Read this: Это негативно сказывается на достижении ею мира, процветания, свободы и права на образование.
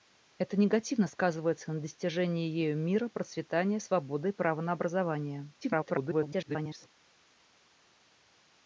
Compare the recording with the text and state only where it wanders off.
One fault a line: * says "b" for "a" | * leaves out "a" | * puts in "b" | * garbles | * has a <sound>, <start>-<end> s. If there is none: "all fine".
* garbles